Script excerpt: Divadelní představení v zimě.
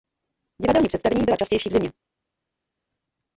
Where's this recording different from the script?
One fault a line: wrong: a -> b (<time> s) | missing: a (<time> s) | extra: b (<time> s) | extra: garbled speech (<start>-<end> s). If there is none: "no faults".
extra: byla častější (1.2 s)